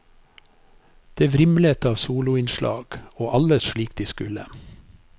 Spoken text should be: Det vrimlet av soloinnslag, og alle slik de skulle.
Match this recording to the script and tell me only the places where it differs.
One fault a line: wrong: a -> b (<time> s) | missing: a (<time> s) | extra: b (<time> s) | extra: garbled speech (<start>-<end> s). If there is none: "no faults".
no faults